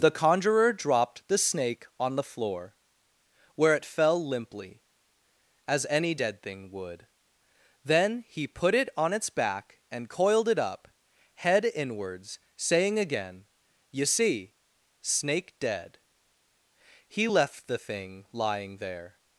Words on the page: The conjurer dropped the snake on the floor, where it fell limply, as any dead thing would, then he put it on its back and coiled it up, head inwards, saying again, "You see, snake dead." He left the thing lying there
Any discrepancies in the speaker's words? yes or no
no